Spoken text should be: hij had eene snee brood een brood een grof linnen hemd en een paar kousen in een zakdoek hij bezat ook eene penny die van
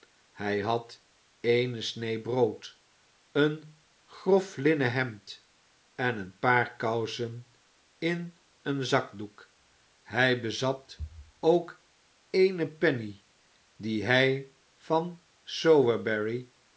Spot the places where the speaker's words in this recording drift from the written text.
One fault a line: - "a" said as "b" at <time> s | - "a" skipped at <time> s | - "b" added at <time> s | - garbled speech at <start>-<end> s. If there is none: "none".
- "brood een" skipped at 3.8 s
- "hij" added at 14.0 s